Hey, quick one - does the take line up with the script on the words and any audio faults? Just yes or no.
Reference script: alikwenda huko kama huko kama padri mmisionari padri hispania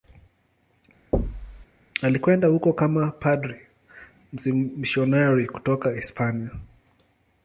no